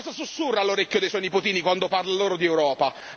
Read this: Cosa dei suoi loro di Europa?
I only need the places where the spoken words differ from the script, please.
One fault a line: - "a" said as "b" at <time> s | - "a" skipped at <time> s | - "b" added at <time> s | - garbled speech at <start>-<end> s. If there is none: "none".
- "sussurra all'orecchio" added at 0.1 s
- "nipotini quando parla" added at 1.2 s